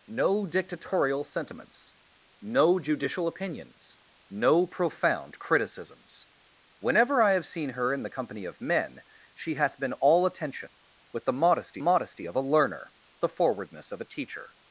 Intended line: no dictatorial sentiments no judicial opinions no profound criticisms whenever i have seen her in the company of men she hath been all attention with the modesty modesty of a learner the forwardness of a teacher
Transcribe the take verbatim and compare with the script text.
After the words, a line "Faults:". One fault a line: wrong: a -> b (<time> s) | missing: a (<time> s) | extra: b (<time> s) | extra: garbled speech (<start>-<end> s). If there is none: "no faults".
no dictatorial sentiments no judicial opinions no profound criticisms whenever i have seen her in the company of men she hath been all attention with the modesty modesty of a learner the forwardness of a teacher
Faults:
no faults